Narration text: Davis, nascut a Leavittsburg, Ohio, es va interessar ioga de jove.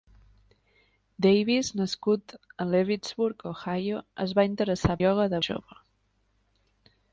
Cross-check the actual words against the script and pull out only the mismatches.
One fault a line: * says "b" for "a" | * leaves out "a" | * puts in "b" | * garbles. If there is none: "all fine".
all fine